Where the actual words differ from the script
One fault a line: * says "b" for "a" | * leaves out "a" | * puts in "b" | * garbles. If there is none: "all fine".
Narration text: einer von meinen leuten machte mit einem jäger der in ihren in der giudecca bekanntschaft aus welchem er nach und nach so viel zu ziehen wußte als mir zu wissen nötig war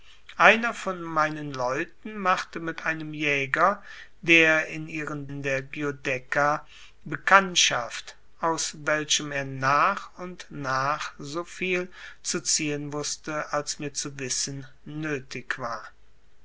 all fine